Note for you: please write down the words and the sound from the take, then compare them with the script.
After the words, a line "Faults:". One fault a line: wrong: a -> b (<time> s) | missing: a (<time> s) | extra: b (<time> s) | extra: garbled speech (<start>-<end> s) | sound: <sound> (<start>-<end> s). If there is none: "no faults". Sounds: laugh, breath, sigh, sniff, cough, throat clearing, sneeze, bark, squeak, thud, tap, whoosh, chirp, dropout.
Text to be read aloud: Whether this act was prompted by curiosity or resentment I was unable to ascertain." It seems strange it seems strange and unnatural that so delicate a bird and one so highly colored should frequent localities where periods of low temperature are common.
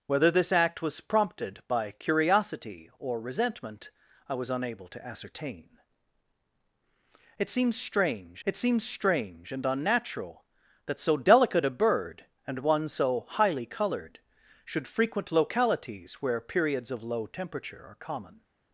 Whether this act was prompted by curiosity or resentment I was unable to ascertain." It seems strange it seems strange and unnatural that so delicate a bird and one so highly colored should frequent localities where periods of low temperature are common.
Faults:
no faults